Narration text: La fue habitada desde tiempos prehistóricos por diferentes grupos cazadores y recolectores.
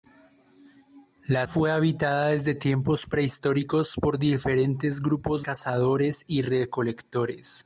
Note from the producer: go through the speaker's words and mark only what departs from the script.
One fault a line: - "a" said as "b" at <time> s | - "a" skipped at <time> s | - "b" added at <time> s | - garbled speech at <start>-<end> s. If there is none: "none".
none